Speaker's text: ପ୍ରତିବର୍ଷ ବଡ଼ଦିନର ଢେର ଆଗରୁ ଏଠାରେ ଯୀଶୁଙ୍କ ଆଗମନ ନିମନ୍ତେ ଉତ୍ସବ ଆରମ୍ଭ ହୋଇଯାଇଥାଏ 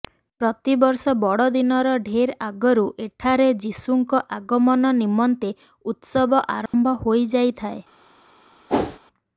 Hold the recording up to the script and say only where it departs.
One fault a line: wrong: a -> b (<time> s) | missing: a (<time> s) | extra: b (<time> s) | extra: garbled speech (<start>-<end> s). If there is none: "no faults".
no faults